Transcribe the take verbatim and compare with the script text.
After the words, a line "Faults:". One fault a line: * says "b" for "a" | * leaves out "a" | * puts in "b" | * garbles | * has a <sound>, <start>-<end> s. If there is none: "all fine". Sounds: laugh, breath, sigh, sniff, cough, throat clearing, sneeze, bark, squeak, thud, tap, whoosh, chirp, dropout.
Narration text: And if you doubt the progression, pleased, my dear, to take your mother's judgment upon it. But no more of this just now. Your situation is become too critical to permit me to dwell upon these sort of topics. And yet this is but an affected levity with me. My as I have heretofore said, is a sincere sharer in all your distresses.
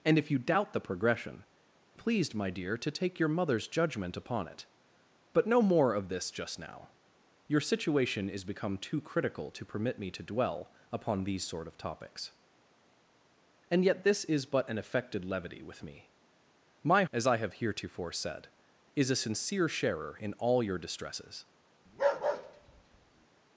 And if you doubt the progression, pleased, my dear, to take your mother's judgment upon it. But no more of this just now. Your situation is become too critical to permit me to dwell upon these sort of topics. And yet this is but an affected levity with me. My as I have heretofore said, is a sincere sharer in all your distresses.
Faults:
* has a bark, 21.9-23.3 s